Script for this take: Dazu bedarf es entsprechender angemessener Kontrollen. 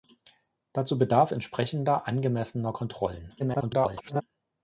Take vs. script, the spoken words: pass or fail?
fail